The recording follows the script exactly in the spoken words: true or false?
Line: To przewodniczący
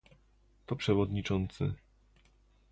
true